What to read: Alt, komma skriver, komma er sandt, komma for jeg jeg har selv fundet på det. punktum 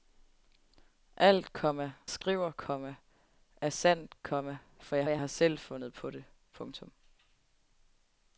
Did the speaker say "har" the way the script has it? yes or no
yes